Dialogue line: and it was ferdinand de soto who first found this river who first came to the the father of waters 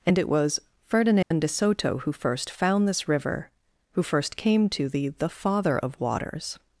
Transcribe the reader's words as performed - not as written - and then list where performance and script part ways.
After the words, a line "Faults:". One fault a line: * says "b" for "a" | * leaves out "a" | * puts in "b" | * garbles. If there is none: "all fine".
and it was ferdinand de soto who first found this river who first came to the the father of waters
Faults:
all fine